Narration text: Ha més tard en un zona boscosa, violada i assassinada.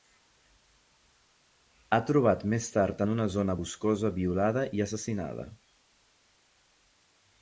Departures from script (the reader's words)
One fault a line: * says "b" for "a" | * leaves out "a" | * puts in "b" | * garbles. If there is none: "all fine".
* puts in "trobat"
* says "una" for "un"